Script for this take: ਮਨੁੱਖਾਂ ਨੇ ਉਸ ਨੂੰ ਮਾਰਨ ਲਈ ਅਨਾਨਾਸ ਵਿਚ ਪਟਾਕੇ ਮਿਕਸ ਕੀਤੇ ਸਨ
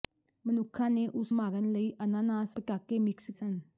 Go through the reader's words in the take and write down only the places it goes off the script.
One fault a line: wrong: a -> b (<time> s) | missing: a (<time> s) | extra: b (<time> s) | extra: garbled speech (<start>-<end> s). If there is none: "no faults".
missing: ਨੂੰ (1.4 s)
missing: ਵਿਚ (2.6 s)
missing: ਕੀਤੇ (3.3 s)